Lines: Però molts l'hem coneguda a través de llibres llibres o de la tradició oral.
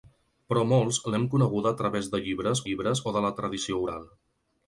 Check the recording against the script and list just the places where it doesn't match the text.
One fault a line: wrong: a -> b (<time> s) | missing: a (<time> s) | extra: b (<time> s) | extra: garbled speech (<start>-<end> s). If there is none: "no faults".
no faults